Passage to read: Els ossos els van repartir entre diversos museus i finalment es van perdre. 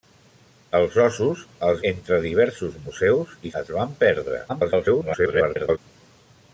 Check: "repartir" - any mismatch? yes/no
yes